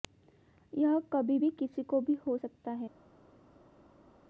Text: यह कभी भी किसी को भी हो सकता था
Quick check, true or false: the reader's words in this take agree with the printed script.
false